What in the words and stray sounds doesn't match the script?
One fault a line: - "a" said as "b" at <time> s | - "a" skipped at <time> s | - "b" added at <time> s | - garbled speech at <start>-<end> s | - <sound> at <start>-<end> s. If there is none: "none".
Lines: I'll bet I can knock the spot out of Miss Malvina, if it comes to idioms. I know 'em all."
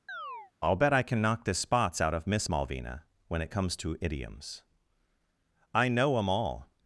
- chirp at 0.1-0.5 s
- "spot" said as "spots" at 1.5 s
- "if" said as "when" at 3.3 s